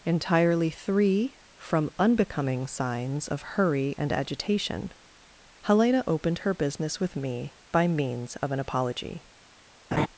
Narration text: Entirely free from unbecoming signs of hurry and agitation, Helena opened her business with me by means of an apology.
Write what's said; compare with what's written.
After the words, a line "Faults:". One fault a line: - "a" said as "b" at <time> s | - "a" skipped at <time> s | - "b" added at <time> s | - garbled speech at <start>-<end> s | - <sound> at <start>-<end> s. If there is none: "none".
Entirely three from unbecoming signs of hurry and agitation, Helena opened her business with me by means of an apology.
Faults:
- "free" said as "three" at 0.7 s
- laugh at 9.9-10.1 s